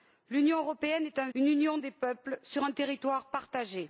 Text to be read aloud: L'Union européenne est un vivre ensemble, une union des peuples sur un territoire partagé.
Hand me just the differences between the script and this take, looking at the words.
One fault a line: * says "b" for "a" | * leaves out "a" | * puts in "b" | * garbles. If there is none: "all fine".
* leaves out "vivre ensemble"